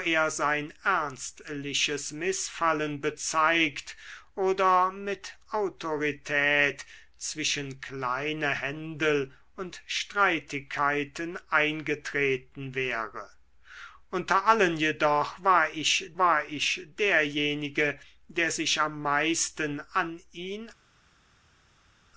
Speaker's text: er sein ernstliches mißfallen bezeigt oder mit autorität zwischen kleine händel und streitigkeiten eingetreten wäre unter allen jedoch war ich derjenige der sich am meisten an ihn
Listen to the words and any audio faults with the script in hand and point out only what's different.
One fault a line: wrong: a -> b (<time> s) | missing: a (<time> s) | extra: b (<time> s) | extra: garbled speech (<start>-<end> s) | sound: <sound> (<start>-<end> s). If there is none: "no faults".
extra: war ich (16.2 s)